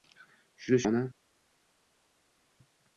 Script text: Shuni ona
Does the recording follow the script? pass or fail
pass